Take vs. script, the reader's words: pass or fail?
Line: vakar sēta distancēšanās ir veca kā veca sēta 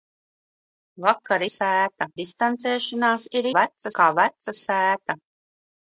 pass